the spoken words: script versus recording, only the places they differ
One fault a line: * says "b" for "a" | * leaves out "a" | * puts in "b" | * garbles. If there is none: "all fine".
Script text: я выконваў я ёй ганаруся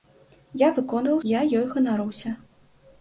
all fine